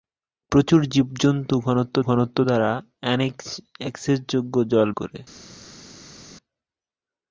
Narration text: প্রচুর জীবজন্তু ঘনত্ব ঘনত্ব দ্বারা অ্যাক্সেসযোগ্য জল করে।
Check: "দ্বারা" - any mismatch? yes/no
no